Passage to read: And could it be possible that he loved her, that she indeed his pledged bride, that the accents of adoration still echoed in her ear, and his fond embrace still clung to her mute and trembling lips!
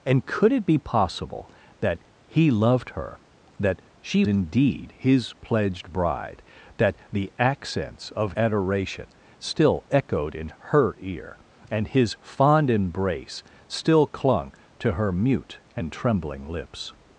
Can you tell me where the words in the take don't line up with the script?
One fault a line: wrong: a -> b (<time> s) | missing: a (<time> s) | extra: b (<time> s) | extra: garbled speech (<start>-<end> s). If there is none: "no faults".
no faults